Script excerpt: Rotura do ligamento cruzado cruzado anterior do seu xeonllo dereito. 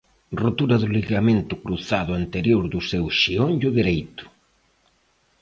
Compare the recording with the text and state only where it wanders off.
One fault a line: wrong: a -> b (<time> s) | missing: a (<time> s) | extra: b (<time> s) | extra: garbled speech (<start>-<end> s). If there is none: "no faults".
missing: cruzado (2.1 s)